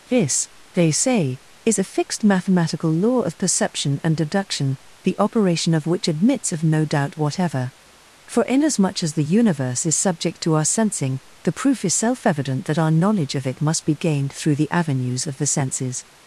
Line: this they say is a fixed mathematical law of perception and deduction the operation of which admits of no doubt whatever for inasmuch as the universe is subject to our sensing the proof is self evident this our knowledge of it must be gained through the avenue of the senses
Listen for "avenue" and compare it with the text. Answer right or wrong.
wrong